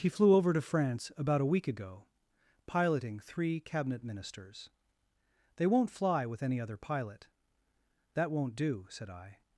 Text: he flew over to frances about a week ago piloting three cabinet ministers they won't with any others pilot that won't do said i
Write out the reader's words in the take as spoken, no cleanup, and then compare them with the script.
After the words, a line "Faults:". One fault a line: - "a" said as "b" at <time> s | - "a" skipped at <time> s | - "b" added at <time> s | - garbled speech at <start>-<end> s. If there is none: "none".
he flew over to france about a week ago piloting three cabinet ministers they won't fly with any other pilot that won't do said i
Faults:
- "frances" said as "france" at 0.6 s
- "fly" added at 5.9 s
- "others" said as "other" at 6.6 s